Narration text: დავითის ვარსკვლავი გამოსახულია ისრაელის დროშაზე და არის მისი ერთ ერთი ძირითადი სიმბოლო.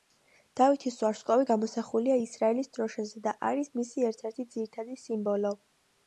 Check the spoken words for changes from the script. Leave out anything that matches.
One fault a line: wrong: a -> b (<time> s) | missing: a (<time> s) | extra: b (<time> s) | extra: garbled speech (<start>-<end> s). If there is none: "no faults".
no faults